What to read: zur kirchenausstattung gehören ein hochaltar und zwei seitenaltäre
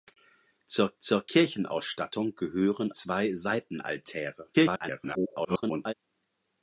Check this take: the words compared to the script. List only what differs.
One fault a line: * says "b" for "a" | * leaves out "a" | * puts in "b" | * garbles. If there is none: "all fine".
* puts in "zur"
* leaves out "ein hochaltar und"
* garbles